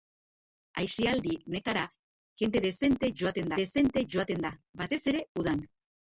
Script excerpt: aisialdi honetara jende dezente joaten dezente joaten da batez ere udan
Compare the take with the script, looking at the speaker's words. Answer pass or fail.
pass